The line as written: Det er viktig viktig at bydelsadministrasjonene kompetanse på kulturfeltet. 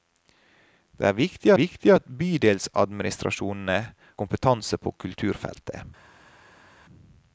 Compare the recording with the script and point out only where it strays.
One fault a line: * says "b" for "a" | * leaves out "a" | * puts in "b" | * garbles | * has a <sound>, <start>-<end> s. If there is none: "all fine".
all fine